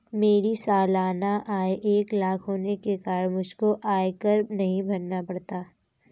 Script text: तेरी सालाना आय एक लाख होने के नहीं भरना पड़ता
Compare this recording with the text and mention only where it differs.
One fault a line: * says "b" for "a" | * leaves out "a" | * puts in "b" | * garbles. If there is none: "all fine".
* says "मेरी" for "तेरी"
* puts in "कारण मुझको आयकर"